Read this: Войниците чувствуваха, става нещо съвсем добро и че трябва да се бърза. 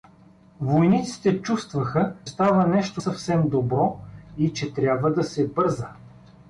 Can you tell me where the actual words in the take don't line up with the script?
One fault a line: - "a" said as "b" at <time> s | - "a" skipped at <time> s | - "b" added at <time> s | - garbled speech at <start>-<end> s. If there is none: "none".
none